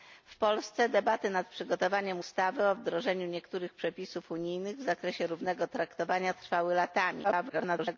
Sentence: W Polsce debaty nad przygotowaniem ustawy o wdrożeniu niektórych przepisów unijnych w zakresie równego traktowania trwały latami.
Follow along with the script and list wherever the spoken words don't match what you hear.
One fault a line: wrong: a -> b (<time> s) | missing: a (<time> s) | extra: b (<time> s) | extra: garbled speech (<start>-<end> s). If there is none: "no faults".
extra: garbled speech (7.2-8.0 s)